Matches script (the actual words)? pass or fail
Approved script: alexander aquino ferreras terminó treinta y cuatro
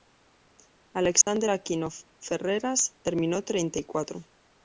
pass